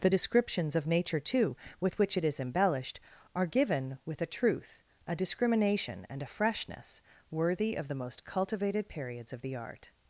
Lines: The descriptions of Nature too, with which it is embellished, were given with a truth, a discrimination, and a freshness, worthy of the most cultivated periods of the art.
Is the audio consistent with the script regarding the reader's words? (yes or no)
no